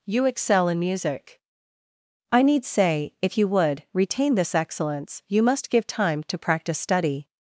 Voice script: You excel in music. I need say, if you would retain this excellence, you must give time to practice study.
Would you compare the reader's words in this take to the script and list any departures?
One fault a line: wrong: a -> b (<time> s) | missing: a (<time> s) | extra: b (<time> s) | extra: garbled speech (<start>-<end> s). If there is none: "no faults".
no faults